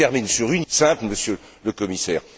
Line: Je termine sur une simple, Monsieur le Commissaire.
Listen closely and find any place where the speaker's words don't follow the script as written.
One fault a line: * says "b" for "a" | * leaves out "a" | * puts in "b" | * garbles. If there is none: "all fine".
all fine